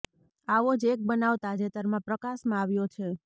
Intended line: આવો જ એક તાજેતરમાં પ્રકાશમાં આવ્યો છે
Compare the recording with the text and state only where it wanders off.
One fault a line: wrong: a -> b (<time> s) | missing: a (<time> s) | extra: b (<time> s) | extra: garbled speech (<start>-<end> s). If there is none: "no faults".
extra: બનાવ (1.0 s)